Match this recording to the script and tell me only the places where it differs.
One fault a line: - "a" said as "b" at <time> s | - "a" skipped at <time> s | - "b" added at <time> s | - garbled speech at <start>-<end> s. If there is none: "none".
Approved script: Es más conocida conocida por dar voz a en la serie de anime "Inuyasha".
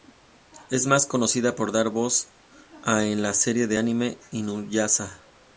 - "conocida" skipped at 1.6 s